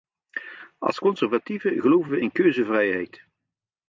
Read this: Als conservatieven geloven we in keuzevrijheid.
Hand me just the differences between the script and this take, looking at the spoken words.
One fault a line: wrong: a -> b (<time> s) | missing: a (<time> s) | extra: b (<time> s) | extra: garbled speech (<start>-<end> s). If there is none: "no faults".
no faults